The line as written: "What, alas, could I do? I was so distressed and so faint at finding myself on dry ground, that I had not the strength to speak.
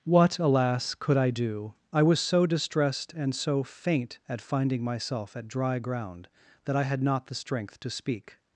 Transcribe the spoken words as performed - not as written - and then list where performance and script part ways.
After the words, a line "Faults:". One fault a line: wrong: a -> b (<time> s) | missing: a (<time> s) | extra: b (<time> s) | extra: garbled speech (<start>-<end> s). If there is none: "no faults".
"What, alas, could I do? I was so distressed and so faint at finding myself at dry ground, that I had not the strength to speak.
Faults:
wrong: on -> at (5.3 s)